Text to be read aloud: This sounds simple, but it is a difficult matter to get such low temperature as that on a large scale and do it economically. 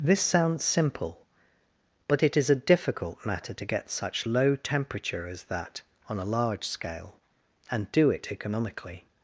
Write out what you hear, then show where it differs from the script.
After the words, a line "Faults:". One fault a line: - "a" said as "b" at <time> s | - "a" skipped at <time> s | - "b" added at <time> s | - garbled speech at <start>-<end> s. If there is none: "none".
This sounds simple, but it is a difficult matter to get such low temperature as that on a large scale and do it economically.
Faults:
none